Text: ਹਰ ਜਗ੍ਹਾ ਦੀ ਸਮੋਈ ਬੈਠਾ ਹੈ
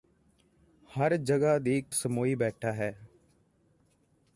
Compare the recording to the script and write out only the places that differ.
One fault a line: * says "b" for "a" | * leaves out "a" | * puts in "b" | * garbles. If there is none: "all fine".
all fine